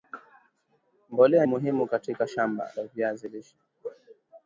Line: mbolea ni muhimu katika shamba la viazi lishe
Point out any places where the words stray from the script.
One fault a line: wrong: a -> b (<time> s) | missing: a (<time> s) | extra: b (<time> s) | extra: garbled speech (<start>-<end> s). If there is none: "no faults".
missing: ni (1.4 s)